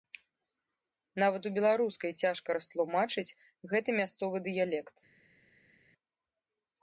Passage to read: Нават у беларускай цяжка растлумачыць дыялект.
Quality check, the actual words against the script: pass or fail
fail